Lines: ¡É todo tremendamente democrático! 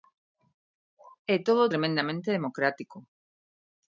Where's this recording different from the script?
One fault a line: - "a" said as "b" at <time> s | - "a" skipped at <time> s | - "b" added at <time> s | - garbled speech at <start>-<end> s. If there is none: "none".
none